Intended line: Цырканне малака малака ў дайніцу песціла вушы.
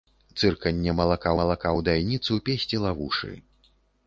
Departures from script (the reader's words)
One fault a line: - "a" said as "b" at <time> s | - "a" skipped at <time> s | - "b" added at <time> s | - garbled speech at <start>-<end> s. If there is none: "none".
none